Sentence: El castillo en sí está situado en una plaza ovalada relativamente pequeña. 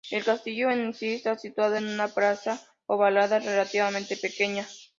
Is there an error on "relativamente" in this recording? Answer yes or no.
no